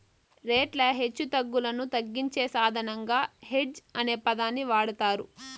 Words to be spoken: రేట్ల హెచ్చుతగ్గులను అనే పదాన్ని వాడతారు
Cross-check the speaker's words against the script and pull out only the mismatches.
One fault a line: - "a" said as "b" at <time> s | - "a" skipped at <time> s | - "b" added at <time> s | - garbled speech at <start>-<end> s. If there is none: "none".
- "తగ్గించే సాధనంగా హెడ్జ్" added at 1.9 s